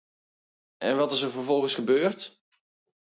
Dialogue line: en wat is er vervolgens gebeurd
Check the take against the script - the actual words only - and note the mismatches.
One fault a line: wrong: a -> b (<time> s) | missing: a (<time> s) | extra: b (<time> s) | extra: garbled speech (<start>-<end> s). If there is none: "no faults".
no faults